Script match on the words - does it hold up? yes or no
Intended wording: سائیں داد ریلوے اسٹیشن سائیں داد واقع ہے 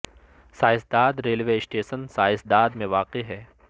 no